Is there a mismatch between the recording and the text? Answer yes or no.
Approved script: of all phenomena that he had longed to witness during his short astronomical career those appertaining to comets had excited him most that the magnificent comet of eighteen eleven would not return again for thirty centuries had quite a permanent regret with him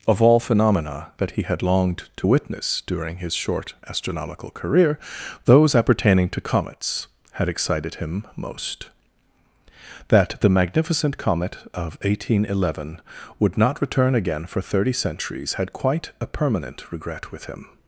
no